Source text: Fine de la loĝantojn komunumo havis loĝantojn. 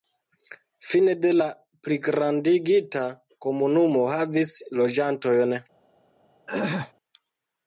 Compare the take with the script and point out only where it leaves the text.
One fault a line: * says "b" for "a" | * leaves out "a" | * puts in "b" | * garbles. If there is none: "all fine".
* says "pligrandigita" for "loĝantojn"